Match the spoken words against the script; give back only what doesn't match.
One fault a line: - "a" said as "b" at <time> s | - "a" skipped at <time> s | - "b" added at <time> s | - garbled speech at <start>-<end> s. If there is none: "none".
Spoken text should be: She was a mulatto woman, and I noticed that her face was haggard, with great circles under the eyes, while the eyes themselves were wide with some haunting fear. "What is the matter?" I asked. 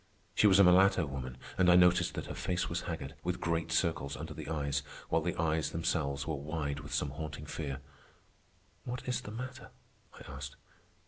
none